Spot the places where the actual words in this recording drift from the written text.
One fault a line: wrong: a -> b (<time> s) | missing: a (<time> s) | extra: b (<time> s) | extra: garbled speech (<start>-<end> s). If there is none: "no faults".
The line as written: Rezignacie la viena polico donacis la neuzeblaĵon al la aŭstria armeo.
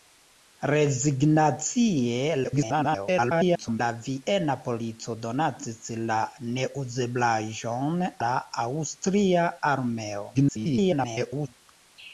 extra: garbled speech (2.4-3.8 s)
missing: al (8.1 s)
extra: garbled speech (10.3-11.5 s)